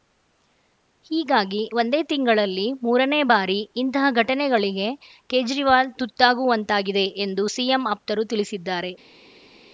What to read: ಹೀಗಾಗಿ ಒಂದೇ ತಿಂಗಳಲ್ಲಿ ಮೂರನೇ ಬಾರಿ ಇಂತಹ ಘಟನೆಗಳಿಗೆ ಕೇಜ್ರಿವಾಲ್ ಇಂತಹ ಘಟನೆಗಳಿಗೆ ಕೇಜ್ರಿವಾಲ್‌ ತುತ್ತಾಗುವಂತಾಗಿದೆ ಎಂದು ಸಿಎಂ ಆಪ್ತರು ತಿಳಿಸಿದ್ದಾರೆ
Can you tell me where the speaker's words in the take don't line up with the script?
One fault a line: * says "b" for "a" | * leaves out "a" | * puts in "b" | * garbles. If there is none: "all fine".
* leaves out "ಇಂತಹ ಘಟನೆಗಳಿಗೆ ಕೇಜ್ರಿವಾಲ್"